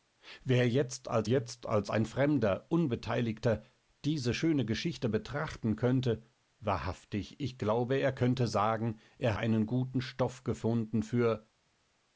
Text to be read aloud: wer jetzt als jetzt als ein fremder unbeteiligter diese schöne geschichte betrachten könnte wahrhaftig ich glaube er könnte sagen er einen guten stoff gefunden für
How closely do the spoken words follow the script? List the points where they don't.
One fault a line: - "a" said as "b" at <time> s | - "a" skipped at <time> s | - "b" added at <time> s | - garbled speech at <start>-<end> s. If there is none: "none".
none